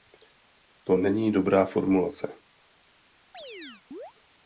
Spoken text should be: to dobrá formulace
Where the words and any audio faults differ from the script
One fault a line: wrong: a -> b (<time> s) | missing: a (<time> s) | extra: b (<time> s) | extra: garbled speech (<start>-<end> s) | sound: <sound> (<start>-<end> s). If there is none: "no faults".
extra: není (1.0 s)
sound: chirp (3.3-4.1 s)